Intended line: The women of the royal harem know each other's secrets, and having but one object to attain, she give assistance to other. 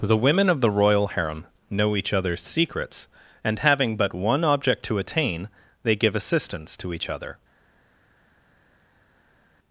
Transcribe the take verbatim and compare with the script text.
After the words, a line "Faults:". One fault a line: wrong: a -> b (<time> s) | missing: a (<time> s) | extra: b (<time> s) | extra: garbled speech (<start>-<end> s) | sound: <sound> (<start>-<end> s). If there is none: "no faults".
The women of the royal harem know each other's secrets, and having but one object to attain, they give assistance to each other.
Faults:
wrong: she -> they (5.8 s)
extra: each (6.9 s)